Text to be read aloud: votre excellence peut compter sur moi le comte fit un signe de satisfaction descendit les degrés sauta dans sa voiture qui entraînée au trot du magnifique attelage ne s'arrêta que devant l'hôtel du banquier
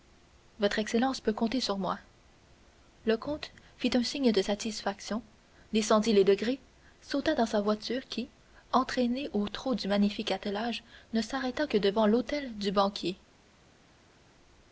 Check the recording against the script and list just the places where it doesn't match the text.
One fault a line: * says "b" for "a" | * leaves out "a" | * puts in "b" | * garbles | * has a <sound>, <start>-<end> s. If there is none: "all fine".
all fine